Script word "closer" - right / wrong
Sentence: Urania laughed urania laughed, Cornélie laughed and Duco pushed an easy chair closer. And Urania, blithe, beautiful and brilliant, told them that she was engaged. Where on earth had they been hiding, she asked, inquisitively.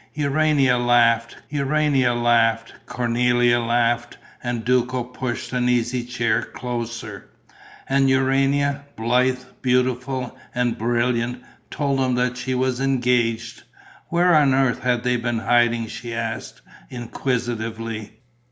right